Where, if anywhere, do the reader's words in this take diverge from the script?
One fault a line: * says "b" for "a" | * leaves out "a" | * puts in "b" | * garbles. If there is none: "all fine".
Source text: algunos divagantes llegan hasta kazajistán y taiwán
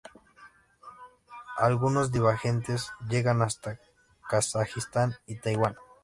all fine